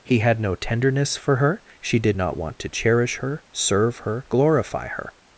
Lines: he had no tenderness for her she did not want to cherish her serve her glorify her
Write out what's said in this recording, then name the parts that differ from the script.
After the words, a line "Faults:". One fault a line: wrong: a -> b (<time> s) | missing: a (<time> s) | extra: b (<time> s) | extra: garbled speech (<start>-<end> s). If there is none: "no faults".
he had no tenderness for her she did not want to cherish her serve her glorify her
Faults:
no faults